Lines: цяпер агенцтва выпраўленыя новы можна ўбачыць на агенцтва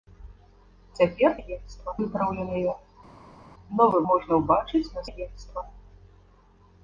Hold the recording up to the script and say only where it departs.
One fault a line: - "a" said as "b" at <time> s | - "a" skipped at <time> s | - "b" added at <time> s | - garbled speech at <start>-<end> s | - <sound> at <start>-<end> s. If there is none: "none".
none